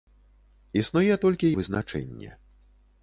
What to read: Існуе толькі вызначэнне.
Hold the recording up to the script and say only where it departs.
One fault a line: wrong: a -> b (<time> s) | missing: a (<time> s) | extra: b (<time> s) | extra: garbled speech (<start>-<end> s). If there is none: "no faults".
no faults